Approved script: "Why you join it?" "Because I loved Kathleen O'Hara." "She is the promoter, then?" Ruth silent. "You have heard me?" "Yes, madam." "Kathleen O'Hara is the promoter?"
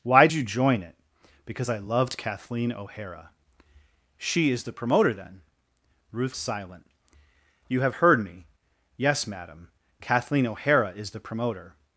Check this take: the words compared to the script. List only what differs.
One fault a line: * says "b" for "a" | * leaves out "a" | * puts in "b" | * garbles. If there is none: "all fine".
all fine